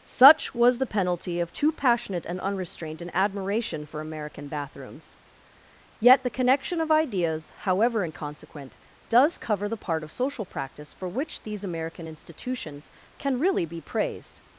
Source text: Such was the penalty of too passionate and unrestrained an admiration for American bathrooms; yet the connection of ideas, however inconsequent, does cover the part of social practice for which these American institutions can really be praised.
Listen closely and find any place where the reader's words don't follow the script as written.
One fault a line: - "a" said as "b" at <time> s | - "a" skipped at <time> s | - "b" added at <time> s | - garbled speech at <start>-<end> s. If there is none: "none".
none